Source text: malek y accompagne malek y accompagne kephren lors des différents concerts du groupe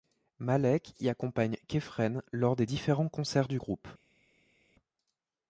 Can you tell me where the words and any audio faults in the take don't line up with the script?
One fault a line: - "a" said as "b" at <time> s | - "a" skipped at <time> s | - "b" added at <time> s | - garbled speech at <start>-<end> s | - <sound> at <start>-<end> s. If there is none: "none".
- "malek y accompagne" skipped at 1.6 s